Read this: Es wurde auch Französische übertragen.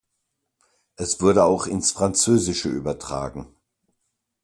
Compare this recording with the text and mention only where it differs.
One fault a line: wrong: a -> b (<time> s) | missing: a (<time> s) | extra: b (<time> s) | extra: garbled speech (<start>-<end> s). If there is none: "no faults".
extra: ins (1.7 s)